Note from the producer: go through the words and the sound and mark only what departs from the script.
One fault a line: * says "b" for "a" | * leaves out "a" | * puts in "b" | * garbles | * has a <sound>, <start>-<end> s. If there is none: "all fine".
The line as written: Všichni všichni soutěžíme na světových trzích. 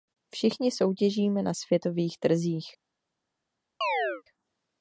* leaves out "všichni"
* has a chirp, 3.8-4.2 s